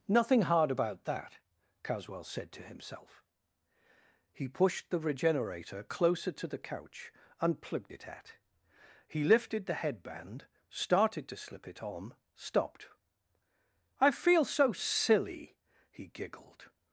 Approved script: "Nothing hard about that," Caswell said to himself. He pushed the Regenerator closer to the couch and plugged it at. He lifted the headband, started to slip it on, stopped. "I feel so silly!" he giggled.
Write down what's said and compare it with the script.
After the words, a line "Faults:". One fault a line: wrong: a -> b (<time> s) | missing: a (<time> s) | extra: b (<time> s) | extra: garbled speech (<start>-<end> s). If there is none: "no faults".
"Nothing hard about that," Caswell said to himself. He pushed the Regenerator closer to the couch and plugged it at. He lifted the headband, started to slip it on, stopped. "I feel so silly!" he giggled.
Faults:
no faults